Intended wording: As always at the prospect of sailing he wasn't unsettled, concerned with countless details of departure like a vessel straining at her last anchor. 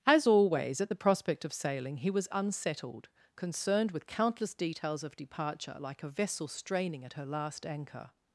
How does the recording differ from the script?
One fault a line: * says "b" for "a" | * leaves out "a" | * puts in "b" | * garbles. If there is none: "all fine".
* says "was" for "wasn't"